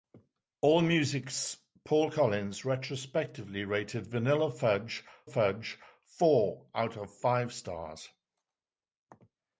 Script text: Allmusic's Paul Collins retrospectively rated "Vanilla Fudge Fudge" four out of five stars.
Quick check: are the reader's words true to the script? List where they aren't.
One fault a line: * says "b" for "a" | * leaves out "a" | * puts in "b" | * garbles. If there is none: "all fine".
all fine